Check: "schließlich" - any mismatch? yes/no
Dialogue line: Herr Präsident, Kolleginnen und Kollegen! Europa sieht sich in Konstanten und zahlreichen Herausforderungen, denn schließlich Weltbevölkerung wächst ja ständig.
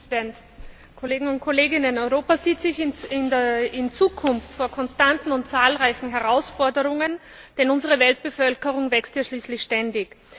yes